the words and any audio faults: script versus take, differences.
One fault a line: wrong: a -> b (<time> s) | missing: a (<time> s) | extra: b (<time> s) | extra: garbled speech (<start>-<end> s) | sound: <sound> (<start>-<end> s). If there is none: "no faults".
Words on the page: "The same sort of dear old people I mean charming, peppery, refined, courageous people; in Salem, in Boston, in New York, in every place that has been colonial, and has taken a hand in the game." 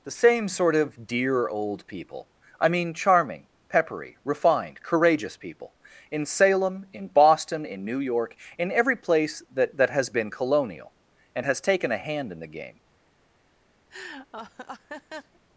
extra: that (9.8 s)
sound: laugh (13.9-15.4 s)